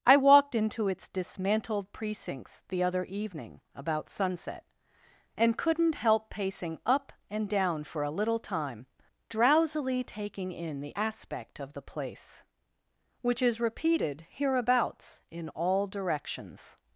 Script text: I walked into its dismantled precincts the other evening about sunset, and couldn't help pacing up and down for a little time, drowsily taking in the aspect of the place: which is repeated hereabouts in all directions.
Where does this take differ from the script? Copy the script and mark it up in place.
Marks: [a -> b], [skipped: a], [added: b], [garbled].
I walked into its dismantled precincts the other evening about sunset, and couldn't help pacing up and down for a little time, drowsily taking in the aspect of the place: which is repeated hereabouts in all directions.